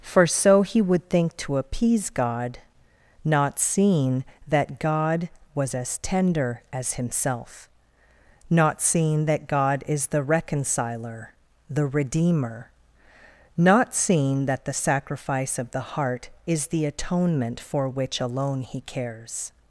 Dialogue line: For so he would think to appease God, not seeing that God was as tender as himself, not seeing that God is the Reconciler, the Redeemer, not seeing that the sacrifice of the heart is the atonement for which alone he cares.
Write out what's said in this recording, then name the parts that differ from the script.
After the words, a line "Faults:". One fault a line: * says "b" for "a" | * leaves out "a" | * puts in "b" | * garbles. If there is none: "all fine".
For so he would think to appease God, not seeing that God was as tender as himself, not seeing that God is the Reconciler, the Redeemer, not seeing that the sacrifice of the heart is the atonement for which alone he cares.
Faults:
all fine